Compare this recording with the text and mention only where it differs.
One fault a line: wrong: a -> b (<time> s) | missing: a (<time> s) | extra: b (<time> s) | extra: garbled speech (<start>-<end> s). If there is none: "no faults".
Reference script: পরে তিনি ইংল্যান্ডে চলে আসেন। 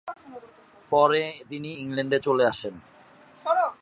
no faults